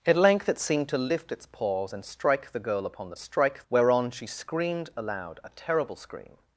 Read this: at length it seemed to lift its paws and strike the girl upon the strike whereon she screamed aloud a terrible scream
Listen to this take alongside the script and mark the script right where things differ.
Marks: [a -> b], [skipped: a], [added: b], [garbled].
at length it seemed to lift its paws and strike the girl upon the strike whereon she screamed aloud a terrible scream